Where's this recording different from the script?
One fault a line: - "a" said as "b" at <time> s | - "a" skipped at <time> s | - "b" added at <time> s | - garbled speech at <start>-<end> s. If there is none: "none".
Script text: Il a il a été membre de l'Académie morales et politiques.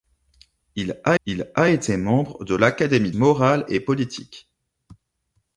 none